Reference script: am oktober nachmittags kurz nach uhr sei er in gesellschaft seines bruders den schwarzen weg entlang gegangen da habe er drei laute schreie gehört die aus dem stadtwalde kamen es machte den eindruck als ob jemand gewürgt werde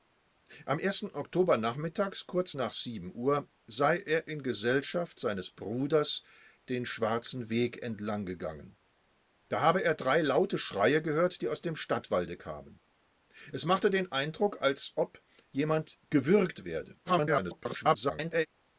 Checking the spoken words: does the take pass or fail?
fail